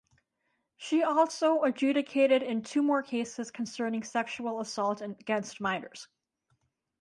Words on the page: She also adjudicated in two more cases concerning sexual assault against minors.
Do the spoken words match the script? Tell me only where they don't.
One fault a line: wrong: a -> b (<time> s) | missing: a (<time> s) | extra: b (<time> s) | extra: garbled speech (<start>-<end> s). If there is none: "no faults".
no faults